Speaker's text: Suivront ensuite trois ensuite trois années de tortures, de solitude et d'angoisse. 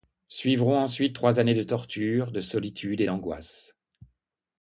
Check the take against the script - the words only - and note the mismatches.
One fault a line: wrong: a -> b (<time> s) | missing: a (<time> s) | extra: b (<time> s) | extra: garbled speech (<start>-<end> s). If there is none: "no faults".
missing: ensuite trois (1.4 s)